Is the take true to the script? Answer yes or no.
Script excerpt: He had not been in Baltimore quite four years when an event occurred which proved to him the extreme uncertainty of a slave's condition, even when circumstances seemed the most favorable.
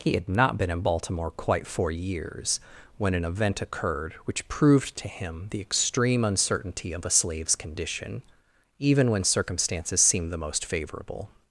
yes